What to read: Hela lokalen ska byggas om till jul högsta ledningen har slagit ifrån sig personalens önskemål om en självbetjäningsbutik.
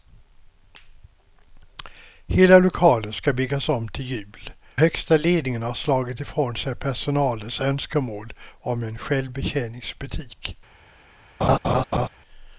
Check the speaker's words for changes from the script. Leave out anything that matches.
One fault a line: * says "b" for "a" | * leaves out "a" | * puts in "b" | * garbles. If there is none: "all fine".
all fine